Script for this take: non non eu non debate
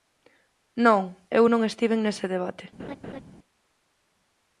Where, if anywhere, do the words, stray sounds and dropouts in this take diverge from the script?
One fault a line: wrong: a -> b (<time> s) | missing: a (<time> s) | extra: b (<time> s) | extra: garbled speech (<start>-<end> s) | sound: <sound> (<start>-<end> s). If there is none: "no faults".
extra: eu (1.4 s)
wrong: eu non -> estiven nese (1.7 s)
sound: laugh (2.8-3.2 s)